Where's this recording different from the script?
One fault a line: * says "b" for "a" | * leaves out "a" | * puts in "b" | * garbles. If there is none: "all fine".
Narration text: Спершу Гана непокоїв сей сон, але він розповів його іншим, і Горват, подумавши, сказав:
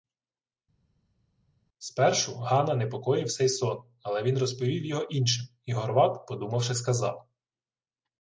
all fine